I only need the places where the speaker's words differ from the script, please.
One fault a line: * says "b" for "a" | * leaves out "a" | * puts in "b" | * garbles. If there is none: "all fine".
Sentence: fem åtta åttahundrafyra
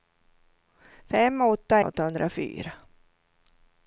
all fine